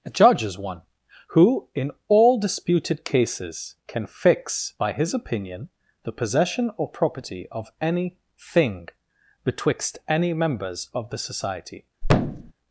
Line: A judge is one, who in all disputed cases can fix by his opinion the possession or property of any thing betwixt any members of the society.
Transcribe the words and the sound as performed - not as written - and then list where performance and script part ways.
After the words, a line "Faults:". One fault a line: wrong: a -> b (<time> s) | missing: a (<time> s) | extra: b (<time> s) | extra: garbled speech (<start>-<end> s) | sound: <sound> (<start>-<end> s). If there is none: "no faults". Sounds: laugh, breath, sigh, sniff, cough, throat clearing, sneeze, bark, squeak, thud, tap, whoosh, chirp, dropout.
A judge is one, who in all disputed cases can fix by his opinion the possession or property of any thing betwixt any members of the society.
Faults:
sound: thud (12.0-12.5 s)